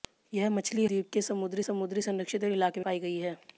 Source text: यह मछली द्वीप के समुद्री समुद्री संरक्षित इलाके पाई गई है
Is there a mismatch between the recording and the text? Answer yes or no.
no